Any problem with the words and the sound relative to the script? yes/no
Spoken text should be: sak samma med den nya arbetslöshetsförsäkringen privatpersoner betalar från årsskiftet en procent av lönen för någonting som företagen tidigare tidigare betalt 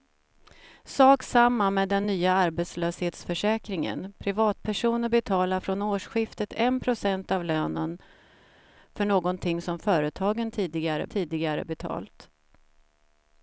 no